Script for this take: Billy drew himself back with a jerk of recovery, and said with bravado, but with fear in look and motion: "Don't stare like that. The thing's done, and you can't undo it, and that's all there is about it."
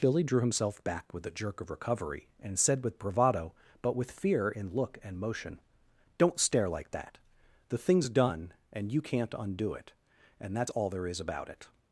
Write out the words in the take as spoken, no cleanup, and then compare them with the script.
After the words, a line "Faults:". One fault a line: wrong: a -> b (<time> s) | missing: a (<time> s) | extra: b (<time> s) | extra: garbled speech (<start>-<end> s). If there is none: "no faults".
Billy drew himself back with a jerk of recovery, and said with bravado, but with fear in look and motion: "Don't stare like that. The thing's done, and you can't undo it, and that's all there is about it."
Faults:
no faults